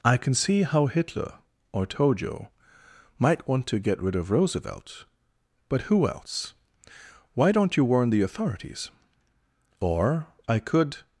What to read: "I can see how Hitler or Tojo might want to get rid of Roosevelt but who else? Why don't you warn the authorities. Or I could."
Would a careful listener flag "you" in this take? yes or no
no